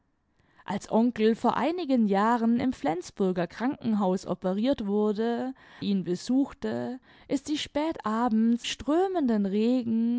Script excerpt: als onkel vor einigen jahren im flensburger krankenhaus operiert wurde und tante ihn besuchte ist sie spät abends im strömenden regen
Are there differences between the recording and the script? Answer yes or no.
yes